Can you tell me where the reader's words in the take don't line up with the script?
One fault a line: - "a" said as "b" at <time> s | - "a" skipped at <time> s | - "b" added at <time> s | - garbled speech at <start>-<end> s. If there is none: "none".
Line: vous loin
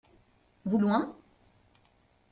none